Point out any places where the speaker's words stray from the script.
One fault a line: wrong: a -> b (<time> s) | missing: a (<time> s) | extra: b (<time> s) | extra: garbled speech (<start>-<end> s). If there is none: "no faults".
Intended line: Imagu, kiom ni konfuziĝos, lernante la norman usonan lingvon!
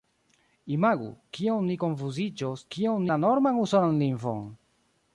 wrong: lernante -> kiom (2.7 s)